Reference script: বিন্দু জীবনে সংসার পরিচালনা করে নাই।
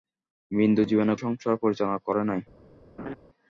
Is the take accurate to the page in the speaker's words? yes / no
yes